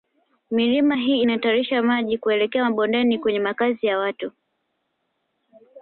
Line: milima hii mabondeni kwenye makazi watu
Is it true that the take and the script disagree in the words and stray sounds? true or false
true